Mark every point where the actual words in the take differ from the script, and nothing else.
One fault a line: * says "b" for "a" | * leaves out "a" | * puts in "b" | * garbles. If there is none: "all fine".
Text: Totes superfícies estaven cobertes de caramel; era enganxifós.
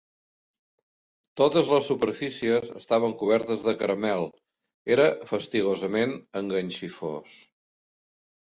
* puts in "les"
* puts in "fastigosament"